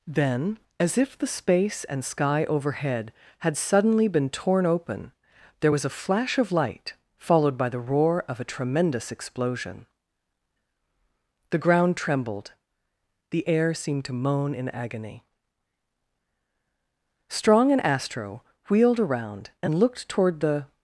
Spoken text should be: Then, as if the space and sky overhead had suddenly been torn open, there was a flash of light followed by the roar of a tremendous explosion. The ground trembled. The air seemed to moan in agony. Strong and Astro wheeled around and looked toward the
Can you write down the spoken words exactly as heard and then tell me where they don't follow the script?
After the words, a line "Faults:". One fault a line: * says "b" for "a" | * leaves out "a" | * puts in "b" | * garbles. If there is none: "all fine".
Then, as if the space and sky overhead had suddenly been torn open, there was a flash of light followed by the roar of a tremendous explosion. The ground trembled. The air seemed to moan in agony. Strong and Astro wheeled around and looked toward the
Faults:
all fine